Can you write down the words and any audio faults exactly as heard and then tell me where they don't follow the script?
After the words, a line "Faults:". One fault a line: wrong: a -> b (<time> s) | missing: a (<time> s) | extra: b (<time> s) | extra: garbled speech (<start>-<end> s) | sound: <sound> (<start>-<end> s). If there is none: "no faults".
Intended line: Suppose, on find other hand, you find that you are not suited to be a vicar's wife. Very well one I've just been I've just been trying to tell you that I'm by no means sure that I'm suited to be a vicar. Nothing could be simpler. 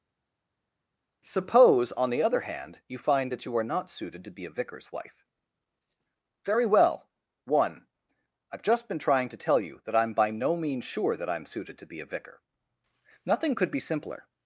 Suppose, on the other hand, you find that you are not suited to be a vicar's wife. Very well one I've just been trying to tell you that I'm by no means sure that I'm suited to be a vicar. Nothing could be simpler.
Faults:
wrong: find -> the (2.1 s)
missing: I've just been (9.0 s)